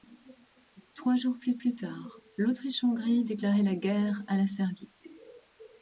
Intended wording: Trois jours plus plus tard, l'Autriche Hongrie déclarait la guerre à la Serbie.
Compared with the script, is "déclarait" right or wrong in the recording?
right